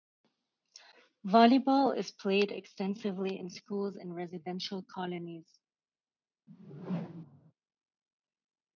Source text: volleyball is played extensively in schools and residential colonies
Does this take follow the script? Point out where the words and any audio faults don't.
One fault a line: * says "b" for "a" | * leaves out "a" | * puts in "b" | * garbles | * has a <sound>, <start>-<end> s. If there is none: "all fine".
* has a whoosh, 6.5-7.5 s